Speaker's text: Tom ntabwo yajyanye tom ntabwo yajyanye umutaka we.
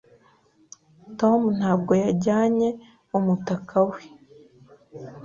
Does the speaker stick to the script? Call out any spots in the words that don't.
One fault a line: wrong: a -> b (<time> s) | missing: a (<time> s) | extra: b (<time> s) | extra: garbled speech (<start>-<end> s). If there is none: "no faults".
missing: tom ntabwo yajyanye (2.7 s)